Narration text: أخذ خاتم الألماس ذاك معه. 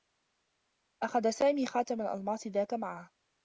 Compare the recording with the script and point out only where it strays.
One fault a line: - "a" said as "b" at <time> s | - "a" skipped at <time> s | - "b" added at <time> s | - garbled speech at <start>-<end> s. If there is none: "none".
- "سامي" added at 1.3 s